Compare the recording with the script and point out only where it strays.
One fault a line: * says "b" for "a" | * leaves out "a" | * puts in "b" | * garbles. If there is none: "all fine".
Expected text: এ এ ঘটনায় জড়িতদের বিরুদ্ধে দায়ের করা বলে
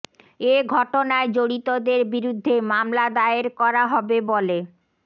* leaves out "এ"
* puts in "মামলা"
* puts in "হবে"